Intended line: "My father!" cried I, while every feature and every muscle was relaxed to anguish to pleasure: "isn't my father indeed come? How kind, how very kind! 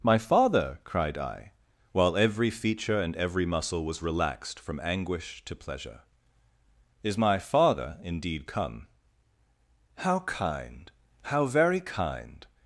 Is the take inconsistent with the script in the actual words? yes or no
yes